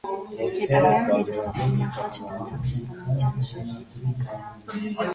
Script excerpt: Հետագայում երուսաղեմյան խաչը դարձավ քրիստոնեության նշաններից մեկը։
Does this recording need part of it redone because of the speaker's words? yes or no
no